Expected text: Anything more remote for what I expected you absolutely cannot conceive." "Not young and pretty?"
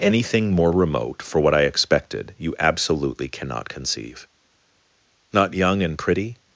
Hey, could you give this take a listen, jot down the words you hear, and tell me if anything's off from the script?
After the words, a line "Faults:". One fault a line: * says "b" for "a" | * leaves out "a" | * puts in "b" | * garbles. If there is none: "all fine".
Anything more remote for what I expected you absolutely cannot conceive." "Not young and pretty?"
Faults:
all fine